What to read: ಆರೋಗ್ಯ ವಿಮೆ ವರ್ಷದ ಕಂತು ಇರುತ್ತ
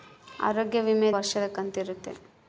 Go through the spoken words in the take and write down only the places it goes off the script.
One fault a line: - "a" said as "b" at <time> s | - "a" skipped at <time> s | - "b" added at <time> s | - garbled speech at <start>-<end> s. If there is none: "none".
none